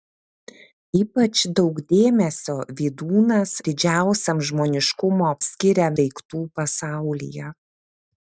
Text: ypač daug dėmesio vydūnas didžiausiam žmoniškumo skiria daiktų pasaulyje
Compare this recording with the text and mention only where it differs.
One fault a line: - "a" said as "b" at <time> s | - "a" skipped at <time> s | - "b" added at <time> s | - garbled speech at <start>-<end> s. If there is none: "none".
none